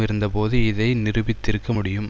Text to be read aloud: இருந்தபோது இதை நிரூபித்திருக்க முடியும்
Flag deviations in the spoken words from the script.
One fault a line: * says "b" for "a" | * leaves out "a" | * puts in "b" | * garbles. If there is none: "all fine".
all fine